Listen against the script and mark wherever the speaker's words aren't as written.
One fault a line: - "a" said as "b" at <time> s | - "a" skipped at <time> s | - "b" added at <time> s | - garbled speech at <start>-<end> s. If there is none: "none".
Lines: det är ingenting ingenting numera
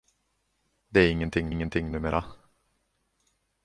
none